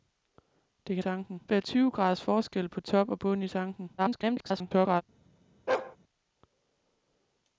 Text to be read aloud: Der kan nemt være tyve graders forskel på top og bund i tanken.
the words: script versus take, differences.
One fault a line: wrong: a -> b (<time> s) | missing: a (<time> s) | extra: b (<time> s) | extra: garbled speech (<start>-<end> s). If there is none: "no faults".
wrong: nemt -> tanken (1.0 s)
extra: garbled speech (4.0-5.0 s)